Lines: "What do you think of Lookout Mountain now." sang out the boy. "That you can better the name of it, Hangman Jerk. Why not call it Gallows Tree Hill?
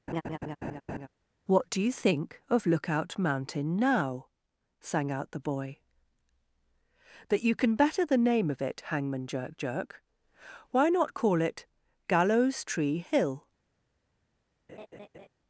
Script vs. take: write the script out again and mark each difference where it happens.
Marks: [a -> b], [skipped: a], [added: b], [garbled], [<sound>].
[laugh] "What do you think of Lookout Mountain now." sang out the boy. "That you can better the name of it, Hangman Jerk. [added: Jerk] Why not call it Gallows Tree Hill? [laugh]